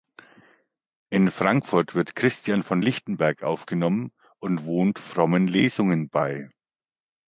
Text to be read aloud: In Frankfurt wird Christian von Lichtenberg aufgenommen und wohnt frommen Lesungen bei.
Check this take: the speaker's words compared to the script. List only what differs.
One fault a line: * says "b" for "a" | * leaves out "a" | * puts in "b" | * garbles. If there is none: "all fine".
all fine